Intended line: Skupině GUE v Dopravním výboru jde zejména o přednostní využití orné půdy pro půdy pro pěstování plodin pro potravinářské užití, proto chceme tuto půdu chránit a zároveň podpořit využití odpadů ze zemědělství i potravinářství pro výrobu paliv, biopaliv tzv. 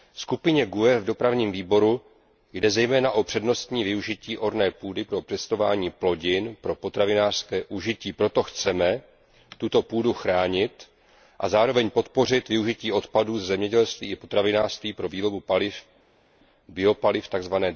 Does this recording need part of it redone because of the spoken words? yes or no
yes